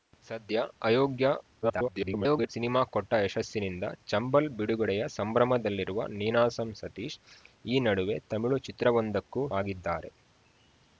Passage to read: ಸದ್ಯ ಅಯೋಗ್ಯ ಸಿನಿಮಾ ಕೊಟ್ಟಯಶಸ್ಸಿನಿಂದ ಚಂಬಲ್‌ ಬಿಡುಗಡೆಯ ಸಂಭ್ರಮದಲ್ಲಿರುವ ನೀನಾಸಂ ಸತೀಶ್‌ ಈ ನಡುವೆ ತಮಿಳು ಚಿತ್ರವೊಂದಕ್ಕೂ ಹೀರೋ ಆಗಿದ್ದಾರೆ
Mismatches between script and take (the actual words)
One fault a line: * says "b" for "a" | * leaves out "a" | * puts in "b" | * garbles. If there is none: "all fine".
* garbles
* leaves out "ಹೀರೋ"